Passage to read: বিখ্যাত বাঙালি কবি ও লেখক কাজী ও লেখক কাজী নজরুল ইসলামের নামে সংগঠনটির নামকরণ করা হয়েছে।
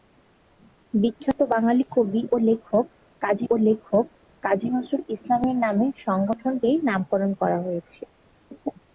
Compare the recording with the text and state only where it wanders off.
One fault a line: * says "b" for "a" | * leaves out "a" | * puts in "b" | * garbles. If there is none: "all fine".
all fine